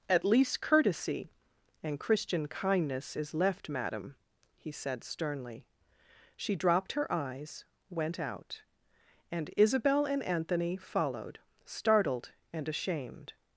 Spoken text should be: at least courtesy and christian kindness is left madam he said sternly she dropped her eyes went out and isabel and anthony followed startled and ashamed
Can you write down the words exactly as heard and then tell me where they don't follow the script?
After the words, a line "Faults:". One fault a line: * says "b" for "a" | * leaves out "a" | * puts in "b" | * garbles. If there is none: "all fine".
at least courtesy and christian kindness is left madam he said sternly she dropped her eyes went out and isabel and anthony followed startled and ashamed
Faults:
all fine